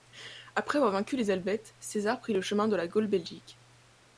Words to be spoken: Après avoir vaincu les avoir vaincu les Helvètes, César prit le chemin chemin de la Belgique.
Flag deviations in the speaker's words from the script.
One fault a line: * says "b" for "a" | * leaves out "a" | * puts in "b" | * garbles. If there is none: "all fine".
* leaves out "avoir vaincu les"
* leaves out "chemin"
* puts in "Gaule"